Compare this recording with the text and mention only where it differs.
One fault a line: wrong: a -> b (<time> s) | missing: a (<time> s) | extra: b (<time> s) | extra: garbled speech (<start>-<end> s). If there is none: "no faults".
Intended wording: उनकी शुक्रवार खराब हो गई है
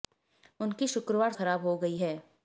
no faults